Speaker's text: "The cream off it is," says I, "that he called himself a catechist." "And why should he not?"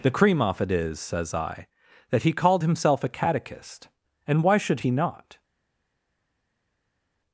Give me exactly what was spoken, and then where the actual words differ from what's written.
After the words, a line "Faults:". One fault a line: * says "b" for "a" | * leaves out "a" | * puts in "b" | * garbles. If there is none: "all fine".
"The cream off it is," says I, "that he called himself a catechist." "And why should he not?"
Faults:
all fine